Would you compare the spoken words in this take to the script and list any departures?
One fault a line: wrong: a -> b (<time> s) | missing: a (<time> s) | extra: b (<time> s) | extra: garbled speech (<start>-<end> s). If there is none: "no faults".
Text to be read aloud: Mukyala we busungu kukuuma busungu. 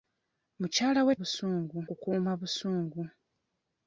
no faults